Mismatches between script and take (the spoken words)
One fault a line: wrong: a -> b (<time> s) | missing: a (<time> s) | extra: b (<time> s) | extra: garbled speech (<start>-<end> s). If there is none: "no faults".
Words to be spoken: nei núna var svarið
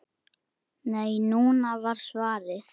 no faults